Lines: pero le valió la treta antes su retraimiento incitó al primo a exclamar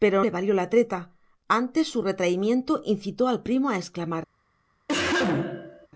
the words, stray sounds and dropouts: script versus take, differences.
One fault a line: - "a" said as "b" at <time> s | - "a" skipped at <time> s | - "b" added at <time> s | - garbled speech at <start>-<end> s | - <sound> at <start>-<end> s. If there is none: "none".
- cough at 4.9-5.9 s